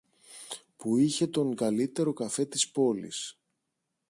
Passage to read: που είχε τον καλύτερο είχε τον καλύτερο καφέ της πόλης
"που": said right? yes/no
yes